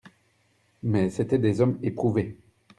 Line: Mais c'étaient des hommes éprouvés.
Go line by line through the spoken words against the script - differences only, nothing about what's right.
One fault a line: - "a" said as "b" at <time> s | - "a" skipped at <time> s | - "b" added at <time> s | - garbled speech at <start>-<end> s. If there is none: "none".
none